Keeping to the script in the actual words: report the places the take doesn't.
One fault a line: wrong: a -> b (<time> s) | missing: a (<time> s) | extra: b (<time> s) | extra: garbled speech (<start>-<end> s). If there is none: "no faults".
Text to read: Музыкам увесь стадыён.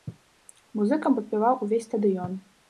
extra: падпяваў (1.2 s)